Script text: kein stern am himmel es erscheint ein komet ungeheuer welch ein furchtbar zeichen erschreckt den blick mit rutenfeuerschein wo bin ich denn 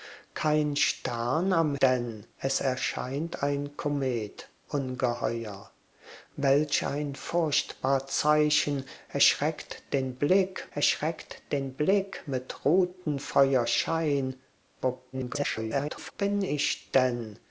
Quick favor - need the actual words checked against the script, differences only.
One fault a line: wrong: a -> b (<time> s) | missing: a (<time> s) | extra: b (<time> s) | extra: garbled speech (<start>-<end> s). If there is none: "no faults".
wrong: himmel -> denn (1.8 s)
extra: erschreckt den blick (10.7 s)
extra: garbled speech (15.1-16.1 s)